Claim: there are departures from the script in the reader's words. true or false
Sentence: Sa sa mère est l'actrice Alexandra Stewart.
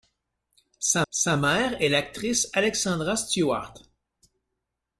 false